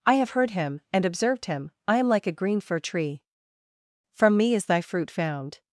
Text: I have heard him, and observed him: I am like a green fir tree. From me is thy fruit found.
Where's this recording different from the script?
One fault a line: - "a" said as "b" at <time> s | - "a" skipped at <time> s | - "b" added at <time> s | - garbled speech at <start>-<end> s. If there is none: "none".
none